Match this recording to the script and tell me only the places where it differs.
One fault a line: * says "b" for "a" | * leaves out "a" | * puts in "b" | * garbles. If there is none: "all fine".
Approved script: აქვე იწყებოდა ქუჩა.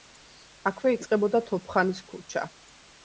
* puts in "თოფხანის"